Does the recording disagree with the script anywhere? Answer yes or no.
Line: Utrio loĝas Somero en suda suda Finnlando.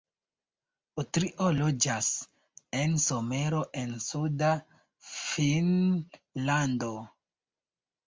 yes